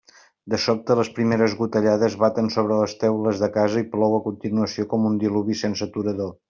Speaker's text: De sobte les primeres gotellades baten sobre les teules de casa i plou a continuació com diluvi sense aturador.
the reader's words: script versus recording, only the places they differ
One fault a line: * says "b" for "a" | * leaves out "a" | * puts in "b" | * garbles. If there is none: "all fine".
* puts in "un"